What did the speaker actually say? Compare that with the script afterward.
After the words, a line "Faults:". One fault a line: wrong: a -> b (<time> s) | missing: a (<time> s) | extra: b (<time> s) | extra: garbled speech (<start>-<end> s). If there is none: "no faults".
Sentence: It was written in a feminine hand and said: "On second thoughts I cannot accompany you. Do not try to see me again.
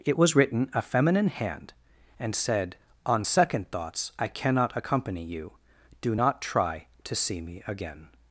It was written a feminine hand and said: "On second thoughts I cannot accompany you. Do not try to see me again.
Faults:
missing: in (0.7 s)